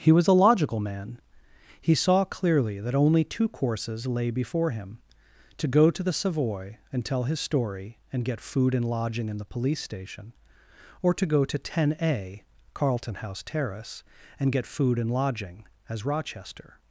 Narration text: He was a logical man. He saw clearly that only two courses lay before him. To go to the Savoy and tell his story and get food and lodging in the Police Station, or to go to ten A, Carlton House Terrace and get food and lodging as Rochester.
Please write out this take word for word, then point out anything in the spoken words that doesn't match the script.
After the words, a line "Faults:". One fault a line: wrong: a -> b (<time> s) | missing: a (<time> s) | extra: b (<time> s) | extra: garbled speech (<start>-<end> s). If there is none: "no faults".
He was a logical man. He saw clearly that only two courses lay before him. To go to the Savoy and tell his story and get food and lodging in the Police Station, or to go to ten A, Carlton House Terrace and get food and lodging as Rochester.
Faults:
no faults